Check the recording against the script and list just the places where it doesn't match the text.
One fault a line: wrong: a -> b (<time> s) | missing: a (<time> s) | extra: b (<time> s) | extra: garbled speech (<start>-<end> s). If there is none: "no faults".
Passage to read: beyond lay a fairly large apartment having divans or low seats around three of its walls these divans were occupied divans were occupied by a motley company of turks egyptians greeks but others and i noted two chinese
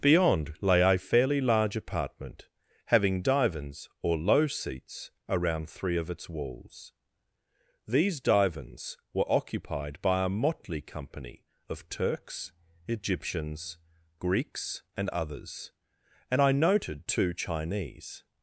missing: divans were occupied (10.0 s)
wrong: but -> and (15.0 s)